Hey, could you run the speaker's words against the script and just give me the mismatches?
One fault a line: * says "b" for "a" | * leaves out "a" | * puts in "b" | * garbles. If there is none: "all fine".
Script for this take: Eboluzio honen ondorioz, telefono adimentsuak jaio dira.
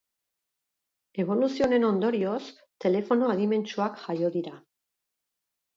all fine